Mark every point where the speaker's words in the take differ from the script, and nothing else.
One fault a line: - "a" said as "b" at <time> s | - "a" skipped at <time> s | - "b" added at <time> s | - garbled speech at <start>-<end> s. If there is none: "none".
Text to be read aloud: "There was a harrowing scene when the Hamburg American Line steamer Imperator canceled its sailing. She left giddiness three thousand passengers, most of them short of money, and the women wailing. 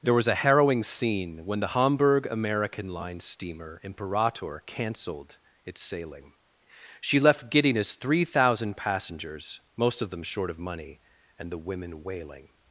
none